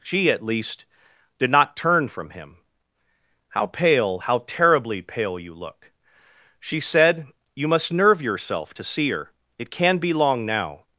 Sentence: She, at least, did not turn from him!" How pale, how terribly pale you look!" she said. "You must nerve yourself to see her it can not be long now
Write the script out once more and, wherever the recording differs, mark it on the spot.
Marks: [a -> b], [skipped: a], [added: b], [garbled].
She, at least, did not turn from him!" How pale, how terribly pale you look!" she said. "You must nerve yourself to see her it can [skipped: not] be long now